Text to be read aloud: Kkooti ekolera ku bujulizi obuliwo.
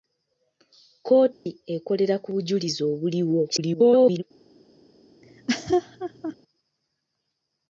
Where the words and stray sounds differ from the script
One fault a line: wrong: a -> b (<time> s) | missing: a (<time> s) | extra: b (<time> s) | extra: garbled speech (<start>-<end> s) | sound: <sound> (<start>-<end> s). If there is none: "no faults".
sound: dropout (1.3-1.5 s)
extra: garbled speech (3.5-4.2 s)
sound: laugh (5.2-6.3 s)